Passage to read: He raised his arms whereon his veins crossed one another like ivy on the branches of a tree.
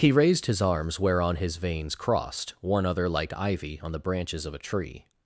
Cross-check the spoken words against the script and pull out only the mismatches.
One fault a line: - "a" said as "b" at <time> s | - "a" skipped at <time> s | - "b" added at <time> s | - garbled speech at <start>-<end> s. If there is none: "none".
- "another" said as "other" at 2.9 s